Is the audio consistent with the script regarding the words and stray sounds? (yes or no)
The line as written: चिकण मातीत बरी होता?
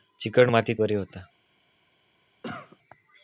no